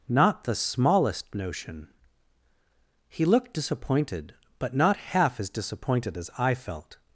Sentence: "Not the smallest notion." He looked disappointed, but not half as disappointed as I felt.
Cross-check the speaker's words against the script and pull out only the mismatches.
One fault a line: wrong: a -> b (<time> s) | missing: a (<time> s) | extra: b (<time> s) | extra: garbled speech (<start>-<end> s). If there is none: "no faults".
no faults